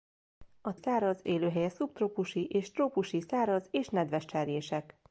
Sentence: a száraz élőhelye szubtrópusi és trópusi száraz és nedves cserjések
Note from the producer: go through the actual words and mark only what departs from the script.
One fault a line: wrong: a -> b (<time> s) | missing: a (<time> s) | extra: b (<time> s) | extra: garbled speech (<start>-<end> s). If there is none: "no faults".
no faults